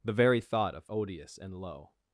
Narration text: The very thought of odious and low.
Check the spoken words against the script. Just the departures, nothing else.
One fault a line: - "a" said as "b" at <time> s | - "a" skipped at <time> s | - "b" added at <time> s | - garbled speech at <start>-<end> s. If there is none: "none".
none